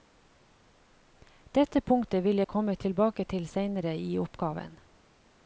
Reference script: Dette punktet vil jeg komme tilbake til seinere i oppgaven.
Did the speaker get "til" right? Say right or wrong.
right